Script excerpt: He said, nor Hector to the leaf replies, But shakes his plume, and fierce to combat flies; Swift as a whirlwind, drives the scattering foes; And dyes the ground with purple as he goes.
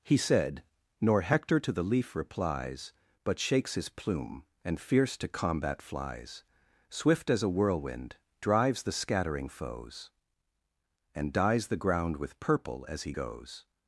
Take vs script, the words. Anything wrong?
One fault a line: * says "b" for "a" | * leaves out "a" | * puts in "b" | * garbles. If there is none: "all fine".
all fine